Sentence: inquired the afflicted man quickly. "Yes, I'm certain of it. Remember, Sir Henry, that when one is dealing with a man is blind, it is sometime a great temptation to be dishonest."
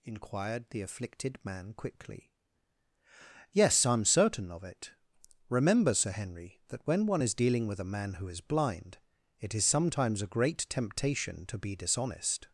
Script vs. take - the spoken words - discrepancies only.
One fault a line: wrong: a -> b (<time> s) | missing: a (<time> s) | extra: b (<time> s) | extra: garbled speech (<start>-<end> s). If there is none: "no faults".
extra: who (8.2 s)
wrong: sometime -> sometimes (9.7 s)